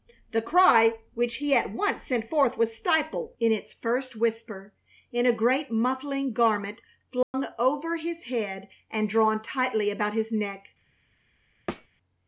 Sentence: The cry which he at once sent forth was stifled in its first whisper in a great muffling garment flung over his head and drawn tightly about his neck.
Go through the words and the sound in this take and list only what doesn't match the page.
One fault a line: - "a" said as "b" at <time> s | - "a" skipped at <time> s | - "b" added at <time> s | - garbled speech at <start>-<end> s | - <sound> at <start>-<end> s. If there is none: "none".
- dropout at 7.2-7.3 s
- thud at 11.7-11.9 s